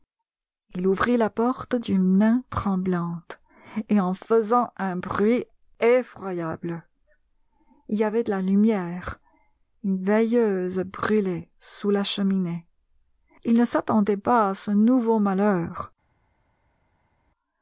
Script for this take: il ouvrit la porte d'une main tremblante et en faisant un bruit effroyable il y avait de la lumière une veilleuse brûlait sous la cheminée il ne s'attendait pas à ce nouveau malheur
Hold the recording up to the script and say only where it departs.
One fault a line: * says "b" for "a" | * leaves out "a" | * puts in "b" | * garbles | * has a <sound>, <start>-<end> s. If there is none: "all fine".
all fine